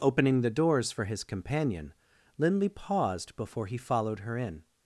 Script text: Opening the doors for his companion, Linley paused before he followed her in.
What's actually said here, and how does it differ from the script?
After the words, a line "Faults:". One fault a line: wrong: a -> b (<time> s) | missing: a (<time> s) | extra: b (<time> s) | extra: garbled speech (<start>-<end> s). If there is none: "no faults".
Opening the doors for his companion, Linley paused before he followed her in.
Faults:
no faults